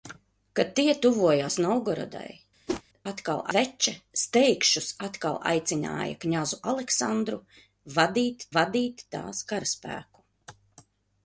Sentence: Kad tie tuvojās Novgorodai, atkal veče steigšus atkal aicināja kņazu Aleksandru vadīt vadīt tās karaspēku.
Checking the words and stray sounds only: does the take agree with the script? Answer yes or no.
no